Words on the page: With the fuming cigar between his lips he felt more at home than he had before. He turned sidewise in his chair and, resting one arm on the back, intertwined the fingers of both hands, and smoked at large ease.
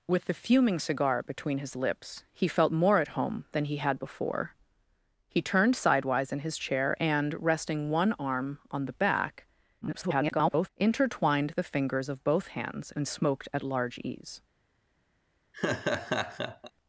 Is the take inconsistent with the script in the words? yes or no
yes